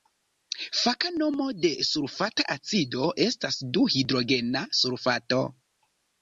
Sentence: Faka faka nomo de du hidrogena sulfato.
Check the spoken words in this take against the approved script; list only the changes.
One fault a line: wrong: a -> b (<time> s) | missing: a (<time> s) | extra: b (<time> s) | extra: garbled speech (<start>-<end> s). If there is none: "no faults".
missing: faka (1.1 s)
extra: sulfata acido estas (1.9 s)